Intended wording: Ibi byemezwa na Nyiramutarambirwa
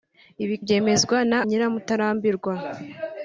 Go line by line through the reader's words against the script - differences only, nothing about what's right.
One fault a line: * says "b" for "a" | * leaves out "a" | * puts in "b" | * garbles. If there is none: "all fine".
all fine